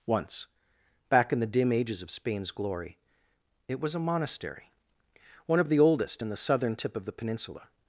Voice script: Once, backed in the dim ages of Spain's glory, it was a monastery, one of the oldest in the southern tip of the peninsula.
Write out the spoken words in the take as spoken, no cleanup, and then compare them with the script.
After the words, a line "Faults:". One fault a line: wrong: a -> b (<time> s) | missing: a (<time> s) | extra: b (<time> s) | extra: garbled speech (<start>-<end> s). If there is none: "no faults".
Once, back in the dim ages of Spain's glory, it was a monastery, one of the oldest in the southern tip of the peninsula.
Faults:
wrong: backed -> back (1.1 s)